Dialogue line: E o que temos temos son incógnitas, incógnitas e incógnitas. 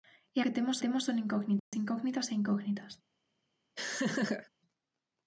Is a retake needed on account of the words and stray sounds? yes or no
yes